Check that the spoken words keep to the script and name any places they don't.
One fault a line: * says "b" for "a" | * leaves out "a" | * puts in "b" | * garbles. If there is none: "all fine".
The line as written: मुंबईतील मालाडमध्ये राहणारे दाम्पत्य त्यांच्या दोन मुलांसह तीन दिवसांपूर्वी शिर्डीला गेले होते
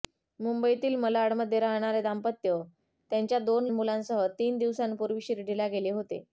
all fine